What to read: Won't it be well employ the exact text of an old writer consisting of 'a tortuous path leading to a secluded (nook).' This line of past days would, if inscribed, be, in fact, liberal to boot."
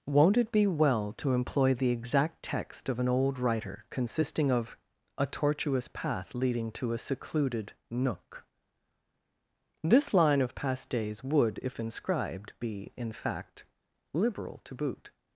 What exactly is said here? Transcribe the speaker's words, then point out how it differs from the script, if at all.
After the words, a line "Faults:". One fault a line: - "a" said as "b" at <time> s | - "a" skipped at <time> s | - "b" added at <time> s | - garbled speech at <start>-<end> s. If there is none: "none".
Won't it be well to employ the exact text of an old writer consisting of 'a tortuous path leading to a secluded (nook).' This line of past days would, if inscribed, be, in fact, liberal to boot."
Faults:
- "to" added at 1.2 s